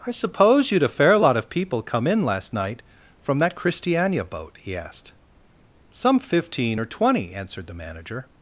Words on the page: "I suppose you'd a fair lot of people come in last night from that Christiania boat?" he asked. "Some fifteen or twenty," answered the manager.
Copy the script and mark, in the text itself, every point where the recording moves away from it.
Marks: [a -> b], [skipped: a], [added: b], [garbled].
"I suppose you'd a fair lot of people come in last night from that Christiania boat?" he asked. "Some fifteen or twenty," answered the manager.